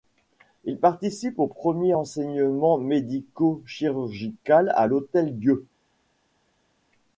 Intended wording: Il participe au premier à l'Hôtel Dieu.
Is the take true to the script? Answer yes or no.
no